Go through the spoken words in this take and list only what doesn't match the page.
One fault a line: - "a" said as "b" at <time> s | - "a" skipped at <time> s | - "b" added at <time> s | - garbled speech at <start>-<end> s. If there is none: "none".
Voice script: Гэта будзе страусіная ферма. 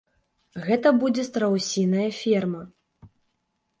none